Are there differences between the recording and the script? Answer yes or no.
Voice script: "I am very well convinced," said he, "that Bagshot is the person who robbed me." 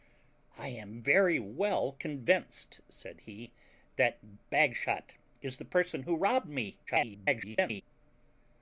yes